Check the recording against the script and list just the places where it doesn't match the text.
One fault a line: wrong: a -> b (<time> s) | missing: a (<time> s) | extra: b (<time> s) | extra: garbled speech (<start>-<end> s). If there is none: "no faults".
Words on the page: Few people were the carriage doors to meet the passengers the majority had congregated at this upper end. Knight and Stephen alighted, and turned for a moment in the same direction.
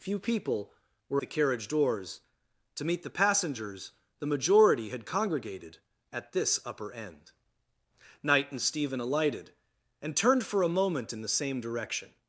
no faults